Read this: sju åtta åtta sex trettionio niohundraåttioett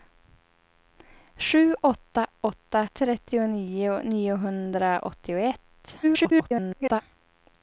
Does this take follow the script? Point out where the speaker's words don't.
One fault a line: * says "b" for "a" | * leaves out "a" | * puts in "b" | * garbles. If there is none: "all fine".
* leaves out "sex"
* garbles